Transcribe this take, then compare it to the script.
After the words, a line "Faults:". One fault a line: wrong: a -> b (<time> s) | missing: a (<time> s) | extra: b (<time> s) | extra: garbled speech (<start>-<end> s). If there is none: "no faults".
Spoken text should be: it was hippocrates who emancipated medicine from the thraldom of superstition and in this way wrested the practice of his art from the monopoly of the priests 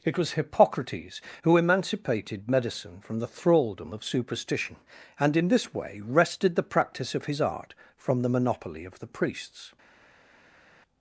it was hippocrates who emancipated medicine from the thraldom of superstition and in this way wrested the practice of his art from the monopoly of the priests
Faults:
no faults